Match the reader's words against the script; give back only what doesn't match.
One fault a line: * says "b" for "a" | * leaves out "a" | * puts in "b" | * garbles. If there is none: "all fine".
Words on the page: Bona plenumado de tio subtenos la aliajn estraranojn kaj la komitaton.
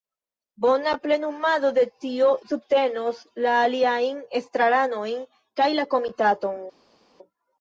all fine